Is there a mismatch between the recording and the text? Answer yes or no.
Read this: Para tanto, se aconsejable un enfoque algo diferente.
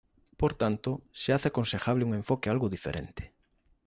yes